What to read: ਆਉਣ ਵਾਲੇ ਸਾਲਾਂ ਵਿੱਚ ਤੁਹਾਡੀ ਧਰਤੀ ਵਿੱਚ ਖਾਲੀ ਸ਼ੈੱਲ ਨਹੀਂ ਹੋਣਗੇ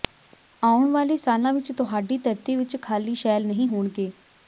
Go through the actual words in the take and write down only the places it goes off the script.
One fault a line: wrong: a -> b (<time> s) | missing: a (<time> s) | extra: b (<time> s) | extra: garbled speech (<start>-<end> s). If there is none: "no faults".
no faults